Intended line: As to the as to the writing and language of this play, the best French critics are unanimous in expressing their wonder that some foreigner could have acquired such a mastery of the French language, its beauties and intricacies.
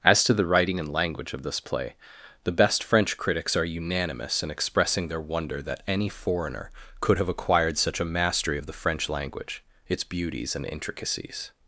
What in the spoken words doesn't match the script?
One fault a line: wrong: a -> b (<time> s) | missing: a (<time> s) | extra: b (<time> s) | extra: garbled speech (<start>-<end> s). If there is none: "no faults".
missing: as to the (0.5 s)
wrong: some -> any (5.9 s)